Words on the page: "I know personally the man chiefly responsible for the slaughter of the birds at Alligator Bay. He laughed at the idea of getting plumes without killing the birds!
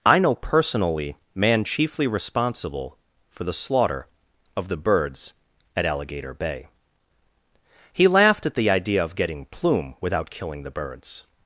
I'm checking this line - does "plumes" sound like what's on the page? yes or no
no